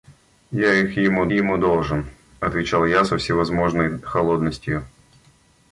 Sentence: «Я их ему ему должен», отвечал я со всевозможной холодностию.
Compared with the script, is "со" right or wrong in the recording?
right